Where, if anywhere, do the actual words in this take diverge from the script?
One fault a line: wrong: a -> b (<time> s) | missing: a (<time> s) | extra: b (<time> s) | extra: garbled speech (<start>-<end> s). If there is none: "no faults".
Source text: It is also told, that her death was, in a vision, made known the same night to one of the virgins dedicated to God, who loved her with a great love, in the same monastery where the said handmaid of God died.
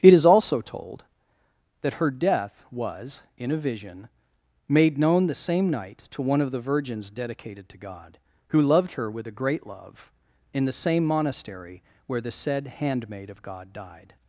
no faults